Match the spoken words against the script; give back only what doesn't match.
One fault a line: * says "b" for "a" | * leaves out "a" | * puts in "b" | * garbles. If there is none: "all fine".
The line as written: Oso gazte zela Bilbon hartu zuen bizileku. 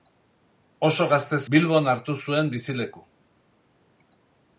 * leaves out "zela"